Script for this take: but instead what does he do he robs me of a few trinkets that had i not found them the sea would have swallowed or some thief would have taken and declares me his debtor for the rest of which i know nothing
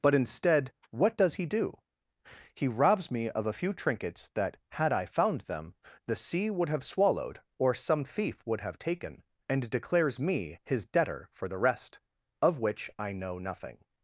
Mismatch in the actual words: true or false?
true